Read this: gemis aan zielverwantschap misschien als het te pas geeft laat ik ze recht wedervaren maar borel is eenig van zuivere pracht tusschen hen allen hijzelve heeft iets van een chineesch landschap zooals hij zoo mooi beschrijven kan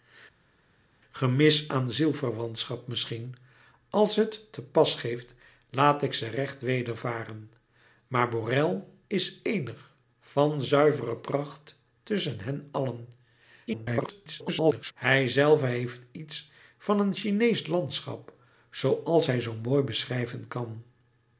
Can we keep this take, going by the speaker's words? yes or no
no